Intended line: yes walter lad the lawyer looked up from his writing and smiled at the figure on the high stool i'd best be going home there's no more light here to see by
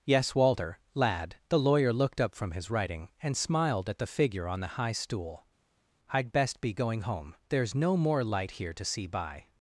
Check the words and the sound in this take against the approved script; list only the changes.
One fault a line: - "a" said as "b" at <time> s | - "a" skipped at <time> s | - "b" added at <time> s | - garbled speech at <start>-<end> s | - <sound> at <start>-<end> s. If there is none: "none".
none